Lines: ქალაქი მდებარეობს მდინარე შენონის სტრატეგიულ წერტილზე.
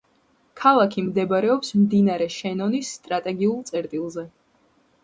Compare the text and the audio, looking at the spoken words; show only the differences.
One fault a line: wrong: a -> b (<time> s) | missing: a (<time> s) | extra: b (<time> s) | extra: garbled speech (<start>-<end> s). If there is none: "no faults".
no faults